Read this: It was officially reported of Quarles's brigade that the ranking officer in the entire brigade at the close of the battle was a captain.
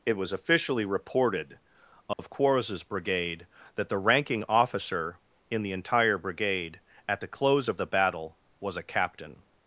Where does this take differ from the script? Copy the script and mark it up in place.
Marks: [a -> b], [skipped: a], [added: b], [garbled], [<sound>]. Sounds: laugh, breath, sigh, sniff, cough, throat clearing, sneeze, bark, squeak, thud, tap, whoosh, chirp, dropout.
It was officially reported of [dropout] Quarles's brigade that the ranking officer in the entire brigade at the close of the battle was a captain.